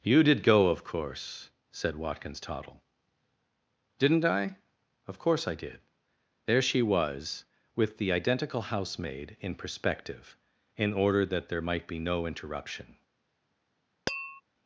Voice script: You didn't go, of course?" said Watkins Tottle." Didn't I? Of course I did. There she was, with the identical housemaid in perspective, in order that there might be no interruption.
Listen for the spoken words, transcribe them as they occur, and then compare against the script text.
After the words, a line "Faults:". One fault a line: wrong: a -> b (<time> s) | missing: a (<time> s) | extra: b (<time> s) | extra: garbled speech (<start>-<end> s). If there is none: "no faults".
You did go, of course?" said Watkins Tottle." Didn't I? Of course I did. There she was, with the identical housemaid in perspective, in order that there might be no interruption.
Faults:
wrong: didn't -> did (0.2 s)